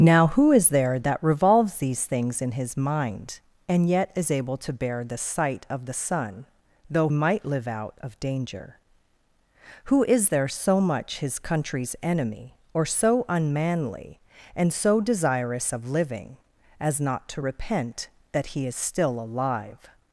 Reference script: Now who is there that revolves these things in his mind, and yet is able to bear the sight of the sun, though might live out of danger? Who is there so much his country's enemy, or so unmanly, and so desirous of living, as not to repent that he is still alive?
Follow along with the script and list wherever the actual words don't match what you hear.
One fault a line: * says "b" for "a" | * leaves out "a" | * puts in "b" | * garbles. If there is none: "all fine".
all fine